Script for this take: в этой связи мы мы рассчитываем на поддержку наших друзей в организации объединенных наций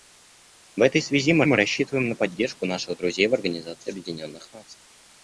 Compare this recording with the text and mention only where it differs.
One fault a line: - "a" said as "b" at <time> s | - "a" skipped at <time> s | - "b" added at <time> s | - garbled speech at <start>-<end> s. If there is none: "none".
none